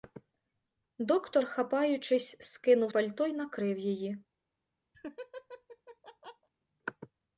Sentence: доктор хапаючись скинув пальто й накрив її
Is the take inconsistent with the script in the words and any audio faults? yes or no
yes